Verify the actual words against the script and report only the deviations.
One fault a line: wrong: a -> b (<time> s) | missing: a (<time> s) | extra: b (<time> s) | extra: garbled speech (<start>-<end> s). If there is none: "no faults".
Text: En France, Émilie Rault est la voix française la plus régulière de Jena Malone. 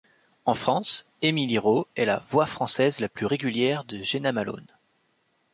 no faults